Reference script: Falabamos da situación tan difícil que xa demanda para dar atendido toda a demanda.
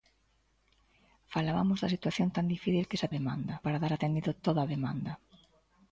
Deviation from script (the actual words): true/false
false